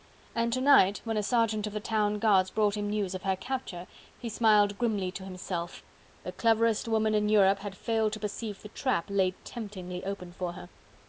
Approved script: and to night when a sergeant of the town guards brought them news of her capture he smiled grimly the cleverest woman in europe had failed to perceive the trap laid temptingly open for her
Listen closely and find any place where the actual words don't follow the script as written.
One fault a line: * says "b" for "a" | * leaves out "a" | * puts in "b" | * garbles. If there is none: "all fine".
* says "him" for "them"
* puts in "to himself"